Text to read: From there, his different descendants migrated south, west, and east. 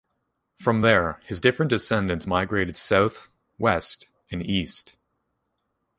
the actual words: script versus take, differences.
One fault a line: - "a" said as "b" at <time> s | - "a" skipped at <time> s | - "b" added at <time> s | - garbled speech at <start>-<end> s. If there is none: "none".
none